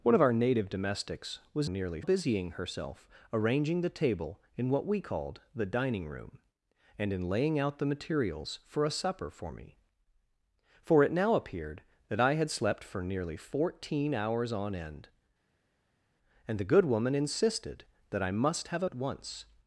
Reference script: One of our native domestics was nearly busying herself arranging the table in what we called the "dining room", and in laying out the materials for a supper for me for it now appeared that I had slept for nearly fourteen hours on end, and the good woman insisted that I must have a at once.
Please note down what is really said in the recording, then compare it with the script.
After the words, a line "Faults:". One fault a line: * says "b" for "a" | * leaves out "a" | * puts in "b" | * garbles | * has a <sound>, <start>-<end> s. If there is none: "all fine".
One of our native domestics was nearly busying herself arranging the table in what we called the "dining room", and in laying out the materials for a supper for me for it now appeared that I had slept for nearly fourteen hours on end, and the good woman insisted that I must have a at once.
Faults:
all fine